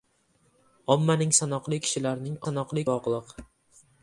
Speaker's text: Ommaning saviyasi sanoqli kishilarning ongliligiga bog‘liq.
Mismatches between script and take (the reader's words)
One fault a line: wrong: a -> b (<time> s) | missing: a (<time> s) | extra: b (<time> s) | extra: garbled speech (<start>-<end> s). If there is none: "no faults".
missing: saviyasi (1.4 s)
wrong: ongliligiga -> sanoqli (2.4 s)